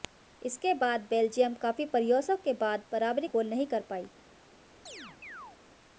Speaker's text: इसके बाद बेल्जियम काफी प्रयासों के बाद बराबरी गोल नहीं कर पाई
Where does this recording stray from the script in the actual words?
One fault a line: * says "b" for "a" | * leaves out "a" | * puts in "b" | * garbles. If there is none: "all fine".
all fine